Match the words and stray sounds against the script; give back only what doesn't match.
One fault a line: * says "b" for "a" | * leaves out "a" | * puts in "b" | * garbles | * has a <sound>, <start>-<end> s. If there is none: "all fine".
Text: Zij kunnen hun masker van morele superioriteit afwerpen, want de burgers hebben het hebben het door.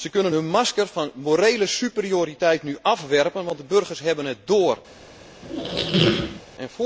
* puts in "nu"
* leaves out "hebben het"
* has a squeak, 5.4-6.4 s